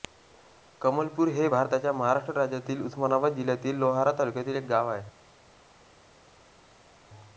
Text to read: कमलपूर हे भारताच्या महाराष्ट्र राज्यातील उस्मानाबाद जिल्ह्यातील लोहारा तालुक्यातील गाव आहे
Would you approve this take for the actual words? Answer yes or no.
no